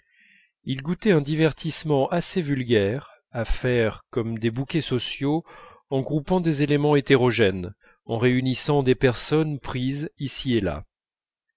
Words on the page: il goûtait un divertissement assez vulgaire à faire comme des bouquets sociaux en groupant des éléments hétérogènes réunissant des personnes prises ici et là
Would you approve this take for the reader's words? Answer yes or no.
no